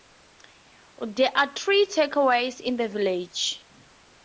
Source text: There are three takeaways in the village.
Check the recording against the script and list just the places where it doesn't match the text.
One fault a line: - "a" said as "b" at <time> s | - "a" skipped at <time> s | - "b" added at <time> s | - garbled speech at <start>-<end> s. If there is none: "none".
none